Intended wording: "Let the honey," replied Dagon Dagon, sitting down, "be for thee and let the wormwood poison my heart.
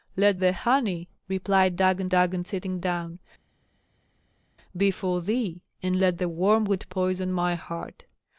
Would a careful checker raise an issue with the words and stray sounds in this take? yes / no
no